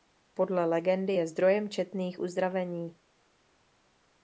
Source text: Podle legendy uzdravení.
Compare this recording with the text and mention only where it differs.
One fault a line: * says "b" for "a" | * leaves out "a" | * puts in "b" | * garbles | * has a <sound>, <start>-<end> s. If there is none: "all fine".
* puts in "je zdrojem četných"